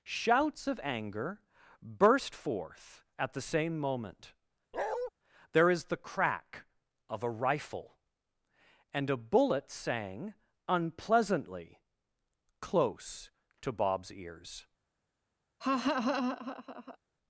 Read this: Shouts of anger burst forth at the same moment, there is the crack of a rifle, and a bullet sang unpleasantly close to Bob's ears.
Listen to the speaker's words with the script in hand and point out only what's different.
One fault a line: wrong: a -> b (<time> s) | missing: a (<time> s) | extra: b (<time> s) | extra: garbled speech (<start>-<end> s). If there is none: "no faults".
no faults